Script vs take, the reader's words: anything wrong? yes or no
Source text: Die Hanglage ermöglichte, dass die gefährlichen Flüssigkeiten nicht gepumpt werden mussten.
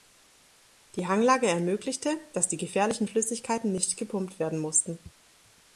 no